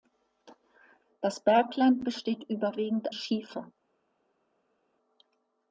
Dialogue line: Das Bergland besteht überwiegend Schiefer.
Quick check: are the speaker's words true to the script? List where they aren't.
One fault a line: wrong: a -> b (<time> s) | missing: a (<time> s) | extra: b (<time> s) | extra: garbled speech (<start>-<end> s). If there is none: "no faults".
no faults